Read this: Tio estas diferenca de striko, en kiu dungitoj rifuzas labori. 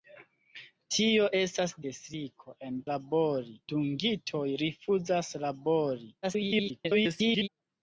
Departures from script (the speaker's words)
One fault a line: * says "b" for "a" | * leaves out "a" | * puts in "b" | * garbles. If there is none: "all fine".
* leaves out "diferenca"
* says "labori" for "kiu"
* garbles